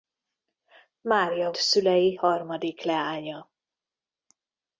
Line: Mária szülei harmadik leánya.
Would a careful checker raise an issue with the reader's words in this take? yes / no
no